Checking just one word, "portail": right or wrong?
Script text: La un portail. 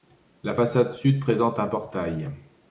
right